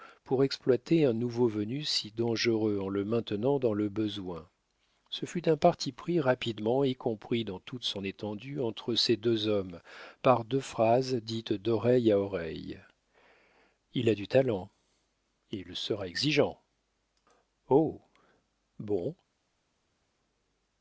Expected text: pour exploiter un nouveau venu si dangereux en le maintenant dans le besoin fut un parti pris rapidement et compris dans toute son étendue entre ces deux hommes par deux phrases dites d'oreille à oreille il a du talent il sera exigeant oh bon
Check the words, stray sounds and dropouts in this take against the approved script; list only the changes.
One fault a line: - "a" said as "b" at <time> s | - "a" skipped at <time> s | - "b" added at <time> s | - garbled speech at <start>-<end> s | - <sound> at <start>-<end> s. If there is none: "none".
- "ce" added at 5.1 s